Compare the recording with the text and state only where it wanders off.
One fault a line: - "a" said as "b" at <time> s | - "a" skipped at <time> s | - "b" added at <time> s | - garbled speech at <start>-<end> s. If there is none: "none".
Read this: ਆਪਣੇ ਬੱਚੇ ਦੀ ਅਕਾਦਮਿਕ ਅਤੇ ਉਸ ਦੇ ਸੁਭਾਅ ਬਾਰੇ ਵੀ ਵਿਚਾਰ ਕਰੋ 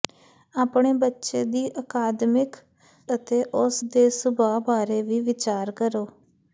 none